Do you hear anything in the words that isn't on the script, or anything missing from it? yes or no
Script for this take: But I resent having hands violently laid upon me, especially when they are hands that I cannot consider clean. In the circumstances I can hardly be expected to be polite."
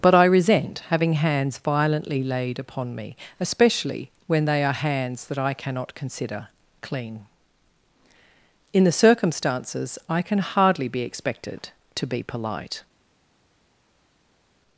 no